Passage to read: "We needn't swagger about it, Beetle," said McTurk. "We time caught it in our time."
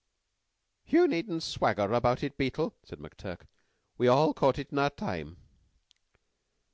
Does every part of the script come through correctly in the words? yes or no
no